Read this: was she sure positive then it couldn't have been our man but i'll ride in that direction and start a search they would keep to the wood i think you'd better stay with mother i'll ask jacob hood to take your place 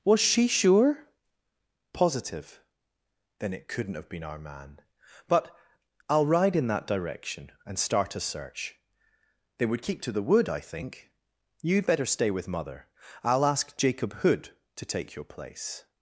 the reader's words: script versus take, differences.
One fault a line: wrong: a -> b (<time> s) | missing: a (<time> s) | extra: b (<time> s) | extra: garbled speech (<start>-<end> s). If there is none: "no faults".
no faults